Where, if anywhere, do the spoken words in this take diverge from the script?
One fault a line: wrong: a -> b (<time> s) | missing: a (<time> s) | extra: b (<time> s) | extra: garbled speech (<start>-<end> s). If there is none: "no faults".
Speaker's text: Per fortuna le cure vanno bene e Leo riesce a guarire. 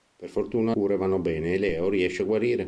missing: le (0.8 s)